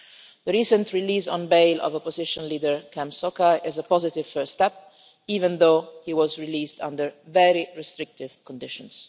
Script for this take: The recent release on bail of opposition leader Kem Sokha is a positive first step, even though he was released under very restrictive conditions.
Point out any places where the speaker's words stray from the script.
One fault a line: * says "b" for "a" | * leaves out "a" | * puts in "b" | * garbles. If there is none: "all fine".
all fine